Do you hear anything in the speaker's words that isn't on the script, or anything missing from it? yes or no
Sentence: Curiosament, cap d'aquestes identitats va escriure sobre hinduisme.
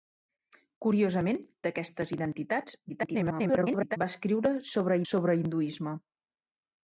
yes